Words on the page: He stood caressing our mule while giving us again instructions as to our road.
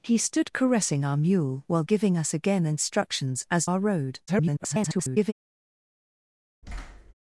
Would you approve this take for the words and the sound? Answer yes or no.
no